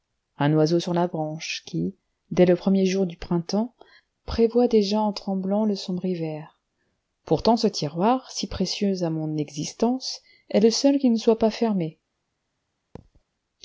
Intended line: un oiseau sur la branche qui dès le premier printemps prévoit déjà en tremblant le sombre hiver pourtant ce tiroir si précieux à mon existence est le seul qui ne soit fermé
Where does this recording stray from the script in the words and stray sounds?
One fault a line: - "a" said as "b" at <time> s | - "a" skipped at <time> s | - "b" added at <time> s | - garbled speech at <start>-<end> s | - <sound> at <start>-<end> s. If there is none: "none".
- "jour du" added at 2.8 s
- "pas" added at 11.4 s
- thud at 13.0-13.2 s